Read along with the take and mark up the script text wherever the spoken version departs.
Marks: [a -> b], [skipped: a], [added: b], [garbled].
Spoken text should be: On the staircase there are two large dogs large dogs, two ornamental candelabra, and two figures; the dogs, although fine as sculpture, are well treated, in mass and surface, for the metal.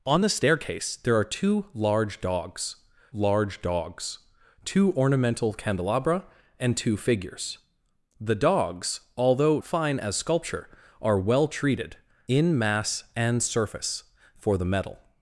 On the staircase there are two large dogs large dogs, two ornamental candelabra, and two figures; the dogs, although fine as sculpture, are well treated, in mass and surface, for the metal.